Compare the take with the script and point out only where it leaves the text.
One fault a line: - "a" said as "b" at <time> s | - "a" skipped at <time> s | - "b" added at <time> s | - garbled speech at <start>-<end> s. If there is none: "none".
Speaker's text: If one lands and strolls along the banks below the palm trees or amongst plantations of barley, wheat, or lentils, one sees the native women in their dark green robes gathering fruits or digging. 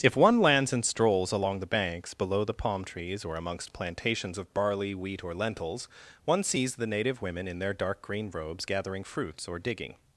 none